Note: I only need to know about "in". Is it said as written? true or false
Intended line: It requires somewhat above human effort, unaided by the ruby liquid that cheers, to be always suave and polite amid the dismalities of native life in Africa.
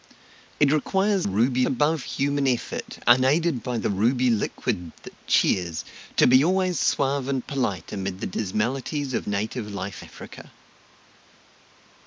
false